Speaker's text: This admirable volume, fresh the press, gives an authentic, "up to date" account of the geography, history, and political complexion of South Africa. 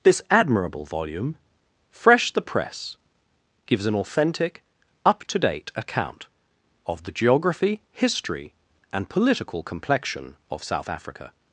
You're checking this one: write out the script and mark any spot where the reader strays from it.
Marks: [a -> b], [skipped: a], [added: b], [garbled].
This admirable volume, fresh the press, gives an authentic, "up to date" account of the geography, history, and political complexion of South Africa.